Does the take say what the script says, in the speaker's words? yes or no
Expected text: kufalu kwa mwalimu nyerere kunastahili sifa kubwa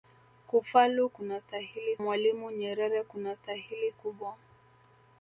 no